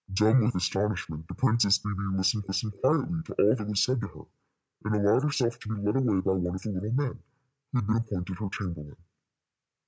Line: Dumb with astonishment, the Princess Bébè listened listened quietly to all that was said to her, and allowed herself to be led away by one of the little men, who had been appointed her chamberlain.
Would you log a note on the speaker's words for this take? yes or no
no